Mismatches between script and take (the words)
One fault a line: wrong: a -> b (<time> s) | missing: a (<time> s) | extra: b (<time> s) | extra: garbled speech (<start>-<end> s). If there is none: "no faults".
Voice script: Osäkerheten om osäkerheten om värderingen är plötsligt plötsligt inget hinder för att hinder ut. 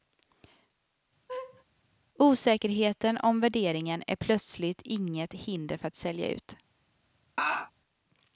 missing: osäkerheten om (3.4 s)
missing: plötsligt (4.8 s)
wrong: hinder -> sälja (5.9 s)